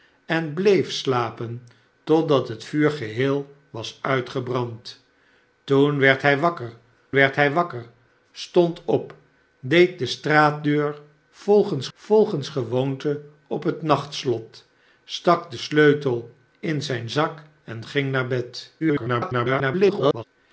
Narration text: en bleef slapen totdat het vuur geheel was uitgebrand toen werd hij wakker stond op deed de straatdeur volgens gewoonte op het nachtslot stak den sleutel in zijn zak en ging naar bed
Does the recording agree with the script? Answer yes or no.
no